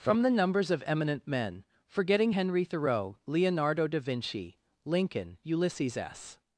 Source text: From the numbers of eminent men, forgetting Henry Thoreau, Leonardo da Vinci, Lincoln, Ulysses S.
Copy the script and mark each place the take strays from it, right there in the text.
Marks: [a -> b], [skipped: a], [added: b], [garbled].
From the numbers of eminent men, forgetting Henry Thoreau, Leonardo da Vinci, Lincoln, Ulysses S.